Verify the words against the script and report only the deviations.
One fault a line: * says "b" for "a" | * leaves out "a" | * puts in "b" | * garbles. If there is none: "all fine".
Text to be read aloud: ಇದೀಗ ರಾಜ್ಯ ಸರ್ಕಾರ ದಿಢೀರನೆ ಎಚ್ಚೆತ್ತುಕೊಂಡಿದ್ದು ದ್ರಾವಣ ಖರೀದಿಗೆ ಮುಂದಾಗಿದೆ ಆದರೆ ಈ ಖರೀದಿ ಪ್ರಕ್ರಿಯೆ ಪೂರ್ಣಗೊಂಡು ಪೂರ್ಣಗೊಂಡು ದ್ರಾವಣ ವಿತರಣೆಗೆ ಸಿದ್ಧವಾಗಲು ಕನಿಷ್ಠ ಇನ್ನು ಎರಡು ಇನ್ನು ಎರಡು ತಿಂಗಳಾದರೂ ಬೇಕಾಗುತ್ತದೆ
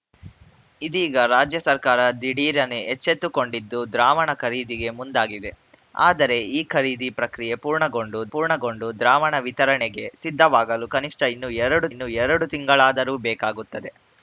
all fine